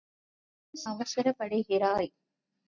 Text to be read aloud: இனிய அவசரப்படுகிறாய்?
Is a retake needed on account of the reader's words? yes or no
no